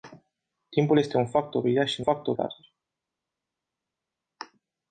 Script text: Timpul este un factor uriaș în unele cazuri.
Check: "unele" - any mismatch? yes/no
yes